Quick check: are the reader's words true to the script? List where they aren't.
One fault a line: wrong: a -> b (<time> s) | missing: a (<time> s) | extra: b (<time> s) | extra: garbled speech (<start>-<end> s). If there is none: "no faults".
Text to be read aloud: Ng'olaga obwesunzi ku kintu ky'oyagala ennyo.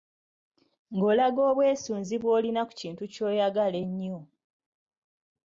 extra: bw'olina (2.2 s)